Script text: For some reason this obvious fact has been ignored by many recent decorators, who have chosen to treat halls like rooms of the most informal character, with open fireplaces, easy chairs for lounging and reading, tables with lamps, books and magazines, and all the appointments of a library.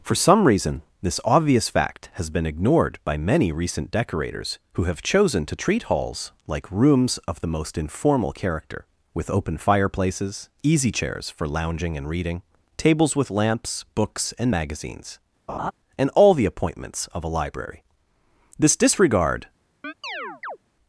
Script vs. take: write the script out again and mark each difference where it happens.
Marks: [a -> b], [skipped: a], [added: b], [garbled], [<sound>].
For some reason this obvious fact has been ignored by many recent decorators, who have chosen to treat halls like rooms of the most informal character, with open fireplaces, easy chairs for lounging and reading, tables with lamps, books and magazines, [laugh] and all the appointments of a library. [added: This disregard] [chirp]